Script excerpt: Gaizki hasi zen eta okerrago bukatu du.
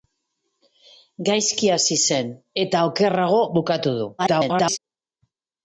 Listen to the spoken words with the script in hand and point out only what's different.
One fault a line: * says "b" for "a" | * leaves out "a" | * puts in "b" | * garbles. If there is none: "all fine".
* garbles